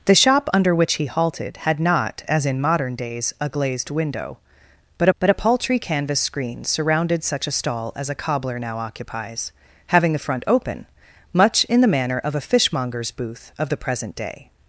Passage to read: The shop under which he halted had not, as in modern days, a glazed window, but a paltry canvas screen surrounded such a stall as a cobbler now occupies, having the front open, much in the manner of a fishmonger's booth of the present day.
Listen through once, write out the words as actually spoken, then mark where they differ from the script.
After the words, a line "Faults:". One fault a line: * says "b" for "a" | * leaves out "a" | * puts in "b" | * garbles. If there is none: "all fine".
The shop under which he halted had not, as in modern days, a glazed window, but but a paltry canvas screen surrounded such a stall as a cobbler now occupies, having the front open, much in the manner of a fishmonger's booth of the present day.
Faults:
* puts in "but"